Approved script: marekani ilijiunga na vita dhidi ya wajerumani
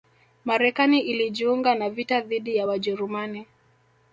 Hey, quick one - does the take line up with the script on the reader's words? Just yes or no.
yes